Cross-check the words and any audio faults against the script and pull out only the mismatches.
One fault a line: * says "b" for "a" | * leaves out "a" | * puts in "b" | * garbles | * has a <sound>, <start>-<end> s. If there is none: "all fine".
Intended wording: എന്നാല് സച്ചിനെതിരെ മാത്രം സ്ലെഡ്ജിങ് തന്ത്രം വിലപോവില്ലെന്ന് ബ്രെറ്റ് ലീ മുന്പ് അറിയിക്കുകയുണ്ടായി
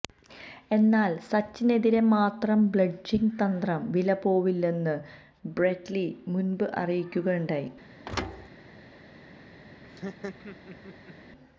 * has a thud, 8.1-8.5 s
* has a laugh, 9.8-11.1 s